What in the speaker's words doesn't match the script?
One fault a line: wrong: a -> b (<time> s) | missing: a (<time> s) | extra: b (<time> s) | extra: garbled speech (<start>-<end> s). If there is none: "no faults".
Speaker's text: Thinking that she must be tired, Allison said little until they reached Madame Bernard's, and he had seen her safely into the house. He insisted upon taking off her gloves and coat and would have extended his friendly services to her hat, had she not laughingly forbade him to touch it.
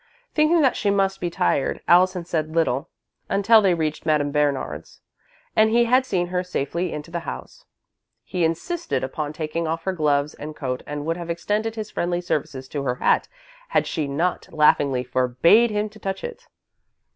no faults